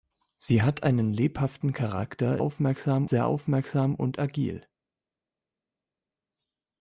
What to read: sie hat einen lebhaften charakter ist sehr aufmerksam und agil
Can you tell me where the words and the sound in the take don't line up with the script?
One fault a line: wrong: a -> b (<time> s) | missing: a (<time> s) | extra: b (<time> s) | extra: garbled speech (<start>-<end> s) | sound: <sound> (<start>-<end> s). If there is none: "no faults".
wrong: ist -> aufmerksam (2.4 s)